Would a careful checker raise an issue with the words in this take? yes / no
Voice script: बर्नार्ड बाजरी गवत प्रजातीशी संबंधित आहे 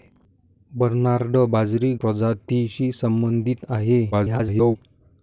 yes